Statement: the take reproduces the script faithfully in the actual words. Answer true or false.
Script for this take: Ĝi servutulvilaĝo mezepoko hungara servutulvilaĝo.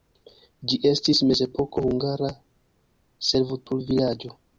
false